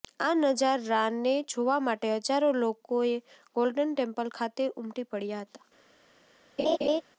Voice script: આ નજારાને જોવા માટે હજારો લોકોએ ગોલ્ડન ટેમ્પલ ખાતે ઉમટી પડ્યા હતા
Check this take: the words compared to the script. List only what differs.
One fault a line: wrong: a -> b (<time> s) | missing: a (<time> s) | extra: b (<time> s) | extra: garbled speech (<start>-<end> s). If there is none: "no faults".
no faults